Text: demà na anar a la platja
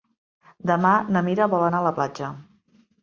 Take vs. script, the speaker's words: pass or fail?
fail